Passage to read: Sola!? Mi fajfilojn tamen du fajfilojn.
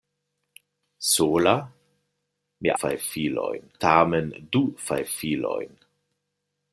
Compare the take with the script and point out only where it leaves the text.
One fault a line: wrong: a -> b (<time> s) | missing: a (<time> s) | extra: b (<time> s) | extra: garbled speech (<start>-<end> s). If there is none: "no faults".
no faults